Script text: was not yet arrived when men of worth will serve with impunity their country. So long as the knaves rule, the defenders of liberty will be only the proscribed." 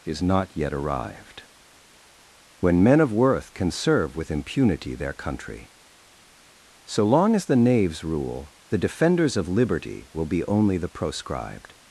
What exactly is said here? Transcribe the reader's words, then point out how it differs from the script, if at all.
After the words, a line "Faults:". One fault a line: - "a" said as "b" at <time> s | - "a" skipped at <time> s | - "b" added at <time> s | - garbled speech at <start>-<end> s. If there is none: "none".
is not yet arrived when men of worth can serve with impunity their country. So long as the knaves rule, the defenders of liberty will be only the proscribed."
Faults:
- "was" said as "is" at 0.1 s
- "will" said as "can" at 3.5 s